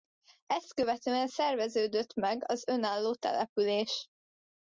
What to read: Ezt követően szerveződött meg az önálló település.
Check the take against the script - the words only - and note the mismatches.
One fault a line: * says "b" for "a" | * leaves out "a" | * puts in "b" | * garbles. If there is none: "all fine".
all fine